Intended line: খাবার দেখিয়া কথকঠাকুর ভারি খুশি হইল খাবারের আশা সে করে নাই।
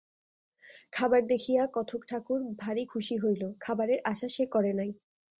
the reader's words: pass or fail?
pass